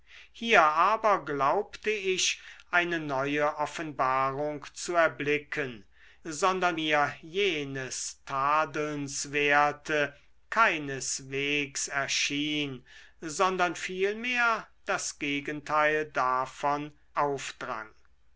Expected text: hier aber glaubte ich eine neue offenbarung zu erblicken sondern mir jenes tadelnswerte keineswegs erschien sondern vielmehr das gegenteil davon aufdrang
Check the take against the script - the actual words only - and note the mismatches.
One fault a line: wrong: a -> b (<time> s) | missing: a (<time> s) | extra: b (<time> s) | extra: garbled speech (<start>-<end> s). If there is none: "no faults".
no faults